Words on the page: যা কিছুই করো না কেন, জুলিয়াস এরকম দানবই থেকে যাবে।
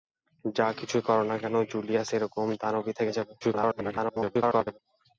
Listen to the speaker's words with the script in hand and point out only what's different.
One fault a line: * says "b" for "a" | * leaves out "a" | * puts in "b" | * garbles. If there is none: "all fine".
* garbles